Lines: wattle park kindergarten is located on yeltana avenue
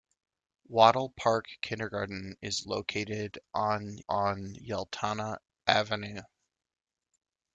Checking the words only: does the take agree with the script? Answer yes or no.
no